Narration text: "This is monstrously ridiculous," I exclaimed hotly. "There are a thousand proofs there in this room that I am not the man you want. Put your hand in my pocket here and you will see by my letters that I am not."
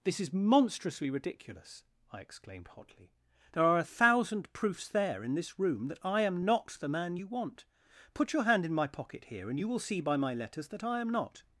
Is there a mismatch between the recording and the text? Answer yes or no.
no